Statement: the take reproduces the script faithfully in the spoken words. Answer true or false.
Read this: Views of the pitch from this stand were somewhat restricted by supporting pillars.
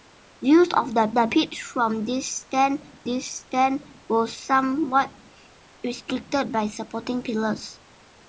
false